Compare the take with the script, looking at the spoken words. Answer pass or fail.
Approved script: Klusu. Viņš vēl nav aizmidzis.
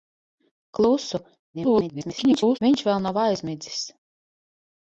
fail